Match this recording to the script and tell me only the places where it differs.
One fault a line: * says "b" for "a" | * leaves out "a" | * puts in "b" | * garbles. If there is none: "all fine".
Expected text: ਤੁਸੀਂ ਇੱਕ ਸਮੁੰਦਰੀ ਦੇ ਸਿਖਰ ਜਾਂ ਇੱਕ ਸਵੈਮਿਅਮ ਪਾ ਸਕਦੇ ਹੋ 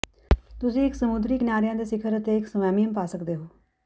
* puts in "ਕਿਨਾਰਿਆਂ"
* says "ਅਤੇ" for "ਜਾਂ"